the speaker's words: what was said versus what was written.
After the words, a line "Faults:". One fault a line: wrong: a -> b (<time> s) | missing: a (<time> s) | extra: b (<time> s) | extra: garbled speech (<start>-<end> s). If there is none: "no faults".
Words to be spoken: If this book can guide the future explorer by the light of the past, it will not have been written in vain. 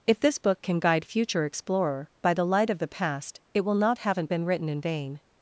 If this book can guide future explorer by the light of the past, it will not haven't been written in vain.
Faults:
missing: the (1.1 s)
wrong: have -> haven't (4.0 s)